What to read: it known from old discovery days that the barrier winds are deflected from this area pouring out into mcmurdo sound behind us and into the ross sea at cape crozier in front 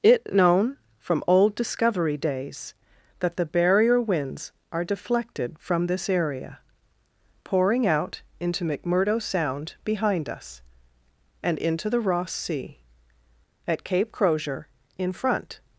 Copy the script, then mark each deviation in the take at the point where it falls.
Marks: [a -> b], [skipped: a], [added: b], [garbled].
it known from old discovery days that the barrier winds are deflected from this area pouring out into mcmurdo sound behind us and into the ross sea at cape crozier in front